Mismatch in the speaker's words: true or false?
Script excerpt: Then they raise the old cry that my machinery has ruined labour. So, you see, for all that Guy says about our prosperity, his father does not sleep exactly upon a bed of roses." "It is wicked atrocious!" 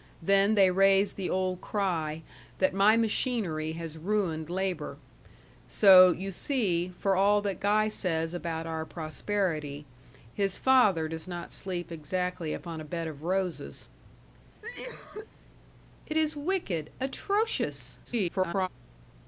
true